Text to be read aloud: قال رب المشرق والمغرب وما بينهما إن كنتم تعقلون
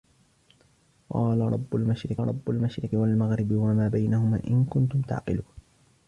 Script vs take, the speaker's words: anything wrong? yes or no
yes